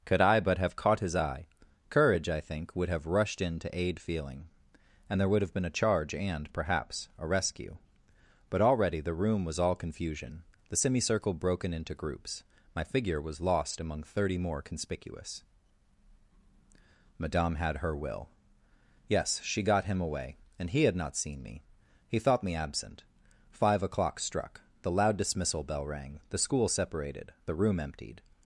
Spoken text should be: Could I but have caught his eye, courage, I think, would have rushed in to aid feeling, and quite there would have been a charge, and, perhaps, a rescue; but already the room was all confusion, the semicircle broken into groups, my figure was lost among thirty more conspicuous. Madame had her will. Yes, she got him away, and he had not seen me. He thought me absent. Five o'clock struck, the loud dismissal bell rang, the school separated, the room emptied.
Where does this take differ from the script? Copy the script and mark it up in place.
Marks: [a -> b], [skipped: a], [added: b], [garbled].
Could I but have caught his eye, courage, I think, would have rushed in to aid feeling, and [skipped: quite] there would have been a charge, and, perhaps, a rescue; but already the room was all confusion, the semicircle broken into groups, my figure was lost among thirty more conspicuous. Madame had her will. Yes, she got him away, and he had not seen me. He thought me absent. Five o'clock struck, the loud dismissal bell rang, the school separated, the room emptied.